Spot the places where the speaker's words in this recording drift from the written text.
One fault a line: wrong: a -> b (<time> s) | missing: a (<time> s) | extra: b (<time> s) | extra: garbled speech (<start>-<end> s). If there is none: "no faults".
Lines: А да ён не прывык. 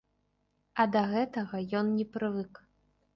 extra: гэтага (1.1 s)